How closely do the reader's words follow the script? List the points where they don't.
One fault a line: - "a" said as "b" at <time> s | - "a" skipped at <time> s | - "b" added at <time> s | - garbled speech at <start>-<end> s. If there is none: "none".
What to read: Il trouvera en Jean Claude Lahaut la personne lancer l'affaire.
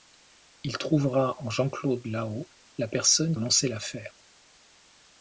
none